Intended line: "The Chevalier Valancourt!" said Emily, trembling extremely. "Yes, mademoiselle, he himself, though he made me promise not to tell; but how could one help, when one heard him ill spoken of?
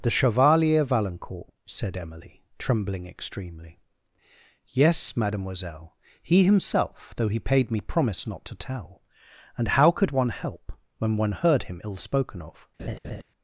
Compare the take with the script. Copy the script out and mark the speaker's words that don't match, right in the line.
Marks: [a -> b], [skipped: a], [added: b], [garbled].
"The Chevalier Valancourt!" said Emily, trembling extremely. "Yes, mademoiselle, he himself, though he [made -> paid] me promise not to tell; [but -> and] how could one help, when one heard him ill spoken of?